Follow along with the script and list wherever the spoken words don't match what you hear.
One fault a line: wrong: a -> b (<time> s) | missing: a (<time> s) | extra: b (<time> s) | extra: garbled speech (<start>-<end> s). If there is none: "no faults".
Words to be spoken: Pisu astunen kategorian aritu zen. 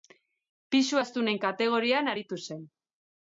no faults